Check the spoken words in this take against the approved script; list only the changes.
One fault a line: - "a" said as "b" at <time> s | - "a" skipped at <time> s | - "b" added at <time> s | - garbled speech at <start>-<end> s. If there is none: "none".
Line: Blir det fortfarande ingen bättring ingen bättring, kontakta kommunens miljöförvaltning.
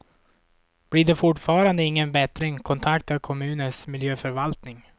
- "ingen bättring" skipped at 2.6 s